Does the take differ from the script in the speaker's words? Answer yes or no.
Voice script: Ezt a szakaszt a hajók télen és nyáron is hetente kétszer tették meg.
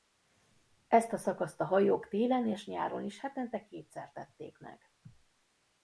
no